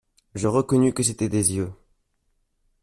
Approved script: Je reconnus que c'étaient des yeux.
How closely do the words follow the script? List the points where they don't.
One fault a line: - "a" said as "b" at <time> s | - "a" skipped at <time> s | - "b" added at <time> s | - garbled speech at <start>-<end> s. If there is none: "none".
none